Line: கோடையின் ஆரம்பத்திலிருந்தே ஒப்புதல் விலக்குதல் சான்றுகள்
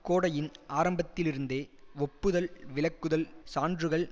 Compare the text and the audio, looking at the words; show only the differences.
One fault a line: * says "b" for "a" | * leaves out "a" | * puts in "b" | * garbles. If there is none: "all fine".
all fine